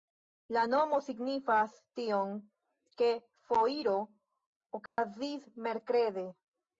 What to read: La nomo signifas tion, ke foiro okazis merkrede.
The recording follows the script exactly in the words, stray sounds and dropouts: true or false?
false